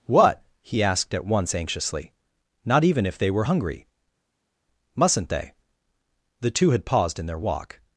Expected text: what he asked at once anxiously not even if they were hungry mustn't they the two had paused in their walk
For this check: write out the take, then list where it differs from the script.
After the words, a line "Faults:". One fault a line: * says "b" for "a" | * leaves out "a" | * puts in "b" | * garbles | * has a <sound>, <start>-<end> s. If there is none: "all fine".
what he asked at once anxiously not even if they were hungry mustn't they the two had paused in their walk
Faults:
all fine